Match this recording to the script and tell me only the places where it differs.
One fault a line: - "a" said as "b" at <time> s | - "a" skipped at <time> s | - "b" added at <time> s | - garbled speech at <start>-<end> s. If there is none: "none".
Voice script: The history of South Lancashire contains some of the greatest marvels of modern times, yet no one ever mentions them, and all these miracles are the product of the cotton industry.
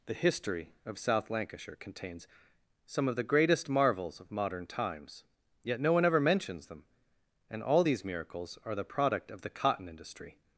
none